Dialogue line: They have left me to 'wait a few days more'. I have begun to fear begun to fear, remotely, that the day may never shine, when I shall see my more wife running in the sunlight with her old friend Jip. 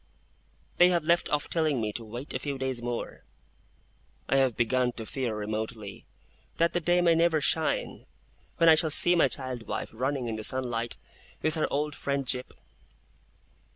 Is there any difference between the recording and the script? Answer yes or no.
yes